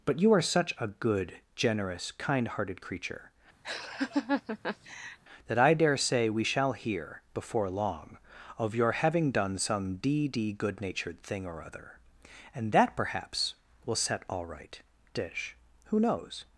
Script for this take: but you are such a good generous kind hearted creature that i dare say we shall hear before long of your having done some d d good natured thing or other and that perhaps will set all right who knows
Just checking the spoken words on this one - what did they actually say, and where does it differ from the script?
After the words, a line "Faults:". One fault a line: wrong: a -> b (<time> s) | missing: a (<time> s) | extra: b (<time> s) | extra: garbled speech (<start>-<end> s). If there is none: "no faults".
but you are such a good generous kind hearted creature that i dare say we shall hear before long of your having done some d d good natured thing or other and that perhaps will set all right dish who knows
Faults:
extra: dish (15.1 s)